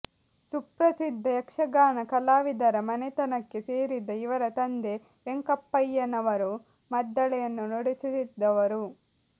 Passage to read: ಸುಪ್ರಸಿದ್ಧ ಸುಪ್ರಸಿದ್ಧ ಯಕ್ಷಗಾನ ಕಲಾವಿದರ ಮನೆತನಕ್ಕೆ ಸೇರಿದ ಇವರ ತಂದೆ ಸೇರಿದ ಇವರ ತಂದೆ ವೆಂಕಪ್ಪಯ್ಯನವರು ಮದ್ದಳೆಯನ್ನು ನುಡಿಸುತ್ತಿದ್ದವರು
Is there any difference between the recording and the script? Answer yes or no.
yes